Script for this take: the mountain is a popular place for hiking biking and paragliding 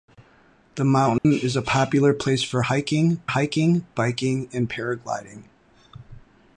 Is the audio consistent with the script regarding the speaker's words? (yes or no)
no